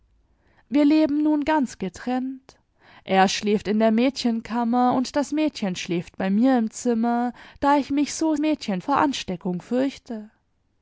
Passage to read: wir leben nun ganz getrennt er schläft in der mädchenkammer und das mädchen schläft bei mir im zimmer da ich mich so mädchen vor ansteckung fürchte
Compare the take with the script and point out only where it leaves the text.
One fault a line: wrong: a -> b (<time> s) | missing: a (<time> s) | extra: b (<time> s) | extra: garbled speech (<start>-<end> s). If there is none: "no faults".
no faults